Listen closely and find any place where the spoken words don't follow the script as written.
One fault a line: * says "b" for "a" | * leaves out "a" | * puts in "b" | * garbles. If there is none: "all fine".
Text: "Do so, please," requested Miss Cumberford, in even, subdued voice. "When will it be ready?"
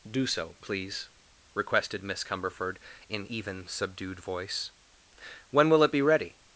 all fine